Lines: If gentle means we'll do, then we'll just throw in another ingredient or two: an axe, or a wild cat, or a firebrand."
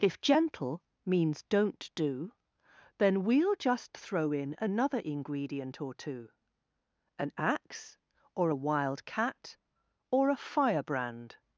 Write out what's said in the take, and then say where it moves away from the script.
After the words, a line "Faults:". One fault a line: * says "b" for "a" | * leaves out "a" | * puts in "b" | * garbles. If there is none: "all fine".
If gentle means don't do, then we'll just throw in another ingredient or two: an axe, or a wild cat, or a firebrand."
Faults:
* says "don't" for "we'll"